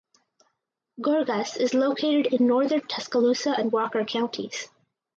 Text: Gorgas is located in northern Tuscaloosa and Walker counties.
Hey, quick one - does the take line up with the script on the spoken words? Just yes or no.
yes